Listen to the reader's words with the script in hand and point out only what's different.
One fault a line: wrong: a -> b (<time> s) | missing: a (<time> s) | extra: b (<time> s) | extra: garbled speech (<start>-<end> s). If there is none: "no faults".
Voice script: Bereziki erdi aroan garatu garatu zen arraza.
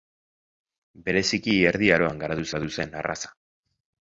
no faults